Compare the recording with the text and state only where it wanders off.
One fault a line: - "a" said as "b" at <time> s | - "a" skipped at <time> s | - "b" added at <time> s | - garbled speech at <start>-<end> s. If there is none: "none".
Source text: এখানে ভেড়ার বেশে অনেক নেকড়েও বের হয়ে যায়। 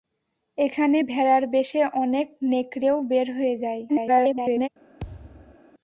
- garbled speech at 3.9-4.7 s